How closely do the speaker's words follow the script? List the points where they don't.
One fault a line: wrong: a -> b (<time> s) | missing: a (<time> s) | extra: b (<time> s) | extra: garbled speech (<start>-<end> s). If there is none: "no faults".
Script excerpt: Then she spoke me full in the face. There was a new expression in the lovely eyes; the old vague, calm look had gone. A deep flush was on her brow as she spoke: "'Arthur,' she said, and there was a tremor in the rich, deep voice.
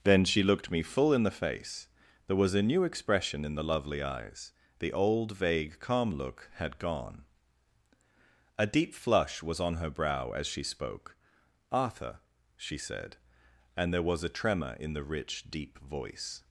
wrong: spoke -> looked (0.4 s)